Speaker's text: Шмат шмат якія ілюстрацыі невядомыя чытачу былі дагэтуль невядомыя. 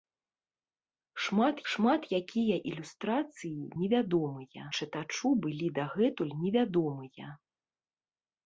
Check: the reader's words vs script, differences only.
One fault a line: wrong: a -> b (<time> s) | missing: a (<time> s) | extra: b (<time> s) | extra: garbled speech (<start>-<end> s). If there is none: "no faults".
no faults